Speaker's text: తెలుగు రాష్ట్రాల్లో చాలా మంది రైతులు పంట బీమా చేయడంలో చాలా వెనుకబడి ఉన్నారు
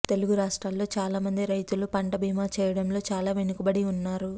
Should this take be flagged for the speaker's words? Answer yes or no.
no